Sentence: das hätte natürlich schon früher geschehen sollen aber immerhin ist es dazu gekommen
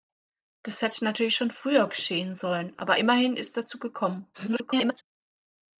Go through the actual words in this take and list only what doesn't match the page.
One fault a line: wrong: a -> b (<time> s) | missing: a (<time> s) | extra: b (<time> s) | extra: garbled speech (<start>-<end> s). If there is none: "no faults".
missing: es (3.6 s)
extra: garbled speech (4.3-5.0 s)